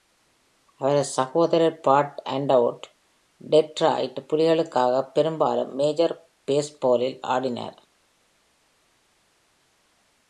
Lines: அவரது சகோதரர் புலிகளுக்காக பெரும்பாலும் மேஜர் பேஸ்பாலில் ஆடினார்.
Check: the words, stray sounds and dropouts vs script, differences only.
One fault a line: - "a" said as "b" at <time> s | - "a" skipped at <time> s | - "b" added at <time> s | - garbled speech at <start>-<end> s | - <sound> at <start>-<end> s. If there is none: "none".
- "பாட் அண்டர்வுட் டெட்ராய்ட்" added at 1.8 s